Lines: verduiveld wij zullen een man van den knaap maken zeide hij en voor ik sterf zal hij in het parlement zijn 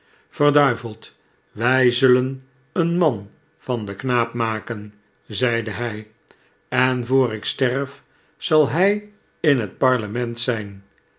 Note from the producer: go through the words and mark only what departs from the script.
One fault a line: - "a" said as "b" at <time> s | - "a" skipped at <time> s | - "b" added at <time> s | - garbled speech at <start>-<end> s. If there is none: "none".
none